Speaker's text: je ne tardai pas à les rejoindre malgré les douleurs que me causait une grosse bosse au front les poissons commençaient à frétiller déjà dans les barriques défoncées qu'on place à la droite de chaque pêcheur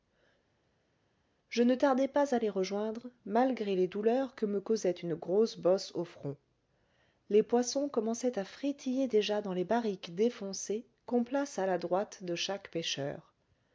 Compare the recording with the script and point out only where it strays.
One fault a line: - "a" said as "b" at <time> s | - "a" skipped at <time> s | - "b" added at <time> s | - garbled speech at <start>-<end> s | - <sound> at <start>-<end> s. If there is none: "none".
none